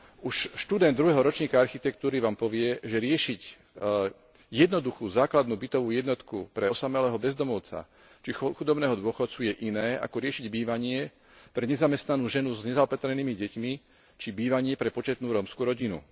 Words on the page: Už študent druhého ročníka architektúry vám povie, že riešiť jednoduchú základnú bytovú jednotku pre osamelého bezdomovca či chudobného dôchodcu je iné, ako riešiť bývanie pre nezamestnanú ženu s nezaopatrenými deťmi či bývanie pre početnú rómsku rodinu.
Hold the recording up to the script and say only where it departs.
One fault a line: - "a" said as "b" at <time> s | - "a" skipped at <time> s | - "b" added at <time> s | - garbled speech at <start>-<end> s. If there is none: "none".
none